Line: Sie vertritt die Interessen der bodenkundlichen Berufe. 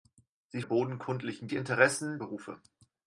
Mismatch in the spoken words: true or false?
true